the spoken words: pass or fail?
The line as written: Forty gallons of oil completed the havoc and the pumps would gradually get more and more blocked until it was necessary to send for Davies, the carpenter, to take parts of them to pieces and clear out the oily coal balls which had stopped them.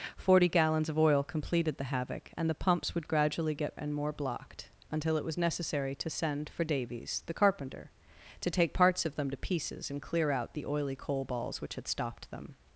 fail